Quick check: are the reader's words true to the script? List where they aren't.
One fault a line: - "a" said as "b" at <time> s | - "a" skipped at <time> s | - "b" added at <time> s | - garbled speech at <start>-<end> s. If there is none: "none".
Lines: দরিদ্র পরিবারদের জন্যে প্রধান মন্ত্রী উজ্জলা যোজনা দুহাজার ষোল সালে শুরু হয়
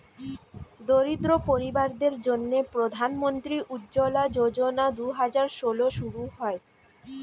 - "সালে" skipped at 5.8 s